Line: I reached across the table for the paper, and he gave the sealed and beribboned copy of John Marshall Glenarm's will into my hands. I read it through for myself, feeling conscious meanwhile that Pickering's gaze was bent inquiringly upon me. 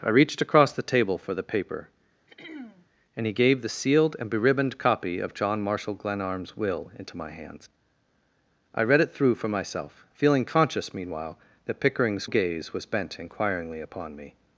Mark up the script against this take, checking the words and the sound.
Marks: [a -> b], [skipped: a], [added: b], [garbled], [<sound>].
I reached across the table for the paper, [throat clearing] and he gave the sealed and beribboned copy of John Marshall Glenarm's will into my hands. I read it through for myself, feeling conscious meanwhile that Pickering's gaze was bent inquiringly upon me.